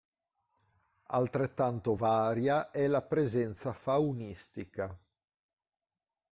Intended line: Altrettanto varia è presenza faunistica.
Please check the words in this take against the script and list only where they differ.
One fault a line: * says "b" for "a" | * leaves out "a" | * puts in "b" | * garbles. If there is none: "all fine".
* puts in "la"